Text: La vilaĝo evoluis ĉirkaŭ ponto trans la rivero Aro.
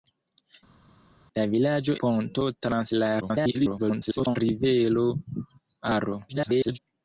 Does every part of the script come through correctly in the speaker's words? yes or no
no